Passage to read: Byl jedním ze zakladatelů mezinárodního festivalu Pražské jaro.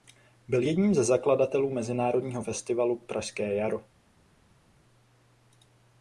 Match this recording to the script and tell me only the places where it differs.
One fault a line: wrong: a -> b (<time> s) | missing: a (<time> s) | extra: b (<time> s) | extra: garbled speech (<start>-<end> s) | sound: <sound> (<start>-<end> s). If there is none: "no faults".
no faults